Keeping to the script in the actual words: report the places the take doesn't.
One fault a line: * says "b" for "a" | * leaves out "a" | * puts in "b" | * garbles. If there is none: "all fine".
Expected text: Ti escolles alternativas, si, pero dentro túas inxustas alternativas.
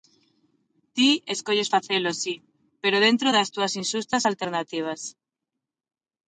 * says "facelo" for "alternativas"
* puts in "das"